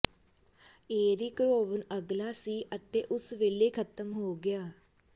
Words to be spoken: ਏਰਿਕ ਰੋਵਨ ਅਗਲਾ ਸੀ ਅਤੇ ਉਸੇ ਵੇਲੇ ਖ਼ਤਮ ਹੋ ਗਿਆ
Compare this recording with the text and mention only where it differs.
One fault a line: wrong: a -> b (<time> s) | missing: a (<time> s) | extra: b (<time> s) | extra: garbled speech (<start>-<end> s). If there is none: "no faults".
no faults